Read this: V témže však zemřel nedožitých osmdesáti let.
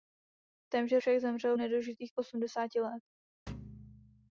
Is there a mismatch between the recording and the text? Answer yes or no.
no